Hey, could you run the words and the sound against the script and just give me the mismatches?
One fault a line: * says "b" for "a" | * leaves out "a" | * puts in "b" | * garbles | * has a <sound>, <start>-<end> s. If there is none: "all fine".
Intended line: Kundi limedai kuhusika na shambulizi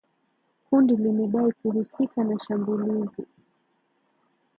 all fine